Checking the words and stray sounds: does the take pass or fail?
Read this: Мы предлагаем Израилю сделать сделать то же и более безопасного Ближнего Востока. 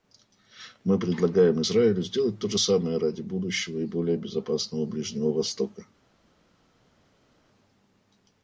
fail